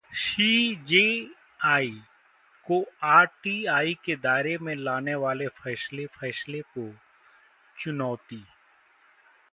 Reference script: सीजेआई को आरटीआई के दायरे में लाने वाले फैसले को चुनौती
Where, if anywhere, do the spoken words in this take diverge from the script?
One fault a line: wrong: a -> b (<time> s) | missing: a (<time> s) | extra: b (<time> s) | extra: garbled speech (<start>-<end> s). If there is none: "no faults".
extra: फैसले (6.0 s)